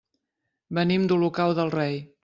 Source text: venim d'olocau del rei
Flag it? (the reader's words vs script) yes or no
no